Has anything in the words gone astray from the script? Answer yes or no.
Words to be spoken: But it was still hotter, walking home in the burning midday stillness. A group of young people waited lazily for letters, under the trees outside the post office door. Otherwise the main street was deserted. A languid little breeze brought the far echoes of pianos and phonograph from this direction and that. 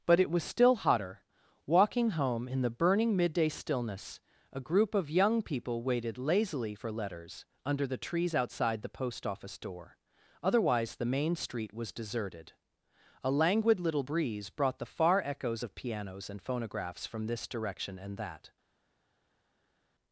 yes